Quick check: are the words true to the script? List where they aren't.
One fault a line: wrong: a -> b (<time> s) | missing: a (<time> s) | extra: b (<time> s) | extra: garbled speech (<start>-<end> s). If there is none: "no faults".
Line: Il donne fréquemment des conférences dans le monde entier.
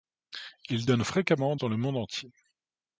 missing: des conférences (1.6 s)